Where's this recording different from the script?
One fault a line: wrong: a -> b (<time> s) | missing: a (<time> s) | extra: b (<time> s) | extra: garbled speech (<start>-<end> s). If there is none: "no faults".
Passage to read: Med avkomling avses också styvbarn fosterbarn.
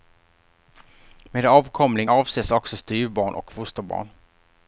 extra: och (3.3 s)